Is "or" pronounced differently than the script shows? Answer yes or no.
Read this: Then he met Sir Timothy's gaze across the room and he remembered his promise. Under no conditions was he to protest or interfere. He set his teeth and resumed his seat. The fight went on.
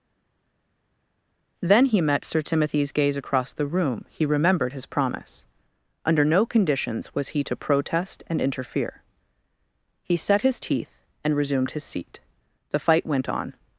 yes